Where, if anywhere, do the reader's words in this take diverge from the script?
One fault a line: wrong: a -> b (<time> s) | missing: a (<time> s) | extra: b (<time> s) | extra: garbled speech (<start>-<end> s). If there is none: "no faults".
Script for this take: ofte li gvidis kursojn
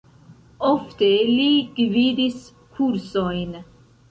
no faults